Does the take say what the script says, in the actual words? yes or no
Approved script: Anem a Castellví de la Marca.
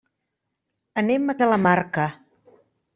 no